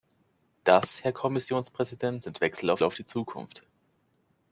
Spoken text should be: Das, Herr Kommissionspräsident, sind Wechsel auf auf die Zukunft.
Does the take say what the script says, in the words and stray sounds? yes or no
yes